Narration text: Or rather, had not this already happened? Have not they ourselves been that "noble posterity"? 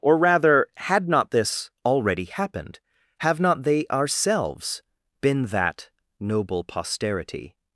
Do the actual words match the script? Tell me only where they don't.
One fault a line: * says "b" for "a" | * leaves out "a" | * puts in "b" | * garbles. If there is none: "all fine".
all fine